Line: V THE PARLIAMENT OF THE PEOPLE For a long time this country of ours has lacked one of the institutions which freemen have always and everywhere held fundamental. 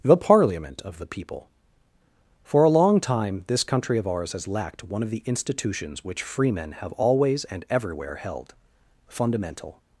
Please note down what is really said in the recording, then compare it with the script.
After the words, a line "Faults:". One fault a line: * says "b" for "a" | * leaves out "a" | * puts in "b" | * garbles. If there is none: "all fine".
THE PARLIAMENT OF THE PEOPLE For a long time this country of ours has lacked one of the institutions which freemen have always and everywhere held fundamental.
Faults:
* leaves out "V"